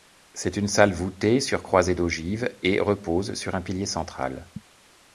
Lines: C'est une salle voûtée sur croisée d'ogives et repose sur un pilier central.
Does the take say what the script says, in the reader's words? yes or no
yes